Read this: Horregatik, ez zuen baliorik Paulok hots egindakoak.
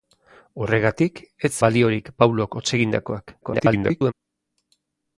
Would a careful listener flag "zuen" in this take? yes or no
yes